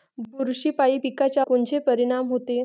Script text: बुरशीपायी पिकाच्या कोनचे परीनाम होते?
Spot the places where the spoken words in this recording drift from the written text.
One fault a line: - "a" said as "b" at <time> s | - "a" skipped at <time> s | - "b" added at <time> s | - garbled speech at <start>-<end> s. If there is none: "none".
none